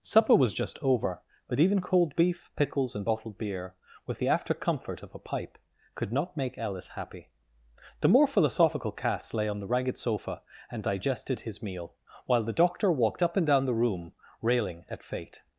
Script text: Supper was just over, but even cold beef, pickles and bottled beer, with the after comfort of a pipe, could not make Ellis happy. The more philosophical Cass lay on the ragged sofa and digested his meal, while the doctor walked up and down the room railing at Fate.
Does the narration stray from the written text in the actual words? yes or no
no